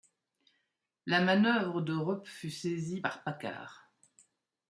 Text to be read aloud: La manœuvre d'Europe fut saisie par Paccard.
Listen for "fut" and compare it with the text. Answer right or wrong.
right